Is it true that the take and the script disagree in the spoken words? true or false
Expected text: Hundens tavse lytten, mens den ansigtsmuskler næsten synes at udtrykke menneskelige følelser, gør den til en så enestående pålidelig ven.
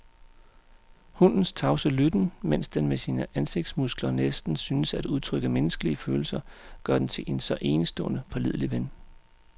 true